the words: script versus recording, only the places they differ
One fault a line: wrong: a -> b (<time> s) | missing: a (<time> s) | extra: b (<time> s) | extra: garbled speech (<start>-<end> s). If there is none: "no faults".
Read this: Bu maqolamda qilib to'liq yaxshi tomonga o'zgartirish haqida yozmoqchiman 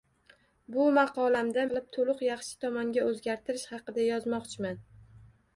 no faults